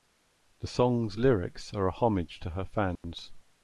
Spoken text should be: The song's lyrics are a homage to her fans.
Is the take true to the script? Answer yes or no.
yes